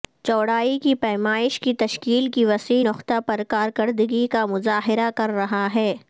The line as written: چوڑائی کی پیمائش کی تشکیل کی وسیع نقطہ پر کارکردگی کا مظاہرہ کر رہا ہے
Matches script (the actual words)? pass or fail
pass